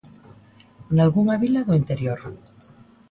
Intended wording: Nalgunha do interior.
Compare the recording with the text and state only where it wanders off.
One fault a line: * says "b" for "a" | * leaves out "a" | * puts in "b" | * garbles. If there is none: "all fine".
* puts in "vila"